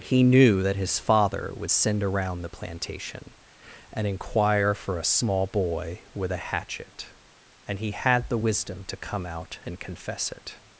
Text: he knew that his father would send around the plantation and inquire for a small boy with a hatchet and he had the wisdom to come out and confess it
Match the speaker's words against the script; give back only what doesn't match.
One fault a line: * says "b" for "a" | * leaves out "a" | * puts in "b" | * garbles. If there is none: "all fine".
all fine